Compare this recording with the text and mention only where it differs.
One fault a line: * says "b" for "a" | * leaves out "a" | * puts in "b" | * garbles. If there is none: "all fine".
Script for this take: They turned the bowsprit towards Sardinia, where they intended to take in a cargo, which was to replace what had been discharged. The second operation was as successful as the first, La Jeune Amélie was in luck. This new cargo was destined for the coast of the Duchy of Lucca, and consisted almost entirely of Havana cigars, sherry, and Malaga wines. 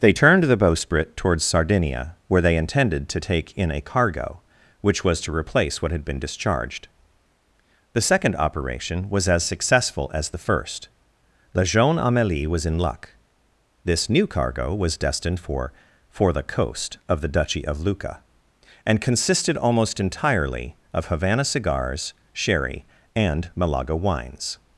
* puts in "for"